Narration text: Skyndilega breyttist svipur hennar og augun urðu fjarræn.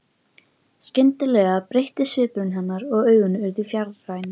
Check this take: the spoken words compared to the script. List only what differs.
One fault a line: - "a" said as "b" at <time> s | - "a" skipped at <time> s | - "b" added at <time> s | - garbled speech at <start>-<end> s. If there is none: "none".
none